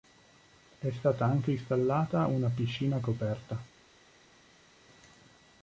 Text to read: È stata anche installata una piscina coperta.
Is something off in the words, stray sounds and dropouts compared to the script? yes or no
no